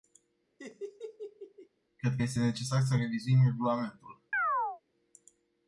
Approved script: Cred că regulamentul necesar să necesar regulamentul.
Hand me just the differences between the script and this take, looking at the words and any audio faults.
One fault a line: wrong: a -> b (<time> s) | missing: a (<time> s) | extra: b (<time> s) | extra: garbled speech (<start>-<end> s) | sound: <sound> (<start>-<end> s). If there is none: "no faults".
sound: laugh (0.6-1.7 s)
wrong: regulamentul -> este (2.2 s)
wrong: necesar -> revizuim (2.9 s)
sound: chirp (4.3-4.8 s)